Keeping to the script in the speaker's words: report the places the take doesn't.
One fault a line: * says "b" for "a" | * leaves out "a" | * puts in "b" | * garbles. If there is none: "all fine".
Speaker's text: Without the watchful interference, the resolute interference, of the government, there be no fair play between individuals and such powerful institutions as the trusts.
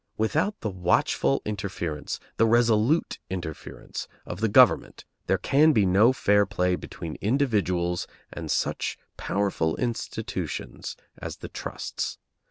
* puts in "can"